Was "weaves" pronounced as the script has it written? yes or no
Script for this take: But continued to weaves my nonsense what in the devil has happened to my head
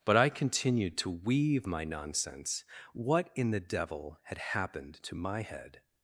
no